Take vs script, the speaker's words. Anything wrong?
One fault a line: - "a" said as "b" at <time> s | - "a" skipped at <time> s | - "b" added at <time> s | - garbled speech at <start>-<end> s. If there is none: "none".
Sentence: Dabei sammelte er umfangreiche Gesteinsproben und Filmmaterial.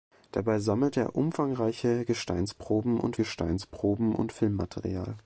- "Gesteinsproben und" added at 3.1 s